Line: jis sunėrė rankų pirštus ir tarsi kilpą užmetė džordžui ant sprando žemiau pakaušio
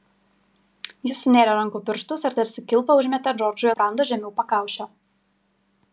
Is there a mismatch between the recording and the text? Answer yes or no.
yes